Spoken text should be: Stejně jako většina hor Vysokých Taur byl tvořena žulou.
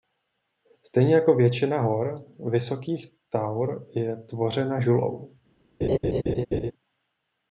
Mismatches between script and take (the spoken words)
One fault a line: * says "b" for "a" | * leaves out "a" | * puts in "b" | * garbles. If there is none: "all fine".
* says "je" for "byl"